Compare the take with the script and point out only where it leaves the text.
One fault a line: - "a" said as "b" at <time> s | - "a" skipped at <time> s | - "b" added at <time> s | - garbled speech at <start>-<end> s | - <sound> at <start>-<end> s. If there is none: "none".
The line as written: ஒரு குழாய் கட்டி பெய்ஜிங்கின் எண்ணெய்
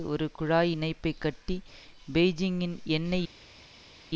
- "இணைப்பை" added at 0.7 s